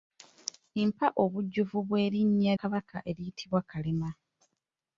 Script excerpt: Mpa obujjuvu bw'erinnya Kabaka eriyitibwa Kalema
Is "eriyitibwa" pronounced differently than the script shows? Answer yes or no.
no